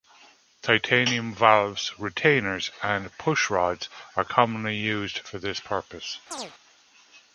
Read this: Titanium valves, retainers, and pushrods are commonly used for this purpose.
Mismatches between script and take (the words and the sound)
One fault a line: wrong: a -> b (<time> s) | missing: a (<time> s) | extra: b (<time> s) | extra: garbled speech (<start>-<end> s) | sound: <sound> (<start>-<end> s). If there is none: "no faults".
sound: chirp (6.3-6.5 s)